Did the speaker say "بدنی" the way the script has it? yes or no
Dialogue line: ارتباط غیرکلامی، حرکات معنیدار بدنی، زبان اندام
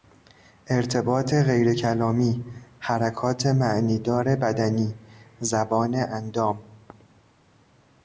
yes